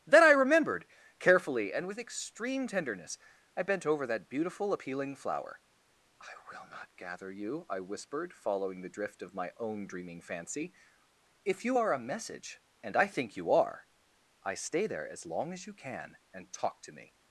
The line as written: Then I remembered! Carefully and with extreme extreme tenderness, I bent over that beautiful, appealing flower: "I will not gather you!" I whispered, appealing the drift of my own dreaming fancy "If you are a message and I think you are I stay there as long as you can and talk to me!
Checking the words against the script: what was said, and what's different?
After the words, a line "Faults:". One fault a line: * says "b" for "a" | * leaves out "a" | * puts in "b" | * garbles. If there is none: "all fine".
Then I remembered! Carefully and with extreme tenderness, I bent over that beautiful, appealing flower: "I will not gather you!" I whispered, following the drift of my own dreaming fancy "If you are a message and I think you are I stay there as long as you can and talk to me!
Faults:
* leaves out "extreme"
* says "following" for "appealing"